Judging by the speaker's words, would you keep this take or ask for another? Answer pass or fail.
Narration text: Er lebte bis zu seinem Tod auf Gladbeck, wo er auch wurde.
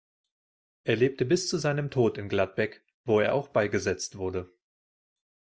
fail